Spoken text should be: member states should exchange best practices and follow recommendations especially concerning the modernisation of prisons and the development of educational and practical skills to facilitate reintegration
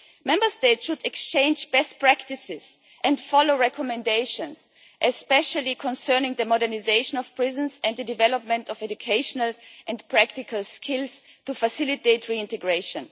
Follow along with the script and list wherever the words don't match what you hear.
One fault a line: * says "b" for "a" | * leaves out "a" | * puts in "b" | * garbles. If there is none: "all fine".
all fine